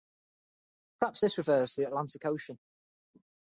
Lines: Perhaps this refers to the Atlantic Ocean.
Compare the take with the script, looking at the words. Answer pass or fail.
pass